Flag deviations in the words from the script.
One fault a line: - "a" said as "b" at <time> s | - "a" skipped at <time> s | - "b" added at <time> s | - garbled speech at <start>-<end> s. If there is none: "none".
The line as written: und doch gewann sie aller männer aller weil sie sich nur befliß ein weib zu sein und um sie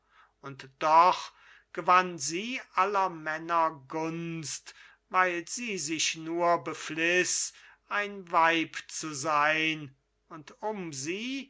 - "aller" said as "gunst" at 3.9 s